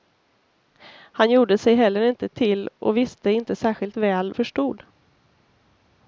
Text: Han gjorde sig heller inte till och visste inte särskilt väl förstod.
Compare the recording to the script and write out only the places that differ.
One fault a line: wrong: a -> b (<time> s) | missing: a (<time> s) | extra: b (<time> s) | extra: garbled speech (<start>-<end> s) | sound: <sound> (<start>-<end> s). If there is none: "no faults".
no faults